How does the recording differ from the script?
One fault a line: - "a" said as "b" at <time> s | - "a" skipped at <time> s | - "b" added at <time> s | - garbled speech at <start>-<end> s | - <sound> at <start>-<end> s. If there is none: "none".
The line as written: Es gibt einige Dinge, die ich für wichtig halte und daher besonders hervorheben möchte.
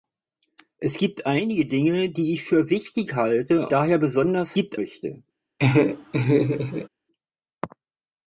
- "und" skipped at 3.7 s
- "hervorheben" said as "gibt" at 4.5 s
- laugh at 5.6-6.9 s